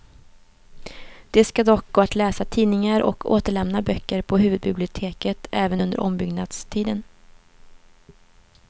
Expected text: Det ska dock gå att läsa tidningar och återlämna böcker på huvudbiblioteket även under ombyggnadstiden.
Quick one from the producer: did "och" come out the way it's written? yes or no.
yes